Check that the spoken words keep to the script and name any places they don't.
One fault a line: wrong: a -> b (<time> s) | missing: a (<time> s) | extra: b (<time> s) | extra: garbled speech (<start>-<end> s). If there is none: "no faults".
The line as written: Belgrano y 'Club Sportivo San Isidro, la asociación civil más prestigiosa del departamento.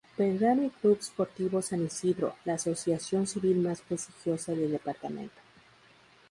no faults